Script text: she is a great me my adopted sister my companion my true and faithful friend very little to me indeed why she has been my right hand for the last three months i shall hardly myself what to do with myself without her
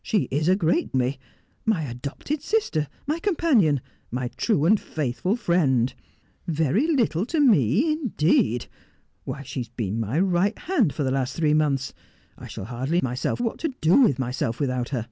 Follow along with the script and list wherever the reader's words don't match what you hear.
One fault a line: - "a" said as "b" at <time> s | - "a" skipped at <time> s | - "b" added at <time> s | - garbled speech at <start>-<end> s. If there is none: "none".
none